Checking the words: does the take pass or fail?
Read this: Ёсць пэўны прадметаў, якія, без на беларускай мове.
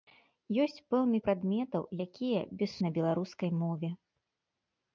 pass